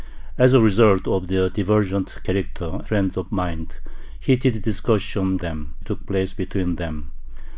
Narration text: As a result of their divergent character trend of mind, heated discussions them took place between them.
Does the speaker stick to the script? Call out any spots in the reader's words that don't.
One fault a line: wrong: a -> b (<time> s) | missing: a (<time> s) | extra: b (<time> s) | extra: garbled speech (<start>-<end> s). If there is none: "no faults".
no faults